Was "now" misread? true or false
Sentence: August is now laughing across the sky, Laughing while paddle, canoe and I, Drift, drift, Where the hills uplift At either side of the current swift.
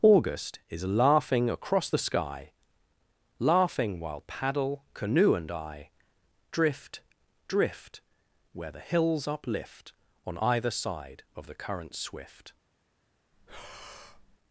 true